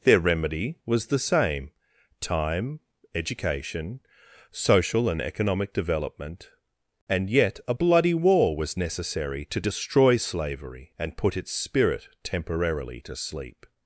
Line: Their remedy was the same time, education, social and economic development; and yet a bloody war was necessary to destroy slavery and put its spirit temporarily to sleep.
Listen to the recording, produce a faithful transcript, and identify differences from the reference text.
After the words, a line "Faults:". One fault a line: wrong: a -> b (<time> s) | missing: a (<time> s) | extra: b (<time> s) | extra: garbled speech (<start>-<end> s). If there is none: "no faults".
Their remedy was the same time, education, social and economic development; and yet a bloody war was necessary to destroy slavery and put its spirit temporarily to sleep.
Faults:
no faults